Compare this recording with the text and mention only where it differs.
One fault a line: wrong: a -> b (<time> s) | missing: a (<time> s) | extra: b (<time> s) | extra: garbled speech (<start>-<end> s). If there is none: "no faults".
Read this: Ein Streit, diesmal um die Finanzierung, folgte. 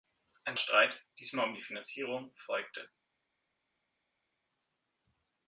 no faults